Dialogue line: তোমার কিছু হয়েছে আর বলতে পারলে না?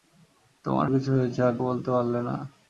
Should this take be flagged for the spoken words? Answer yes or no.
no